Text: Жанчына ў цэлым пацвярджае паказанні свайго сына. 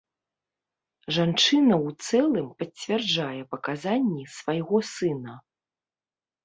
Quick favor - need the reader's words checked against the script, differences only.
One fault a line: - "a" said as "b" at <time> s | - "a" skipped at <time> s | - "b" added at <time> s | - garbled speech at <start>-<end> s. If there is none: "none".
none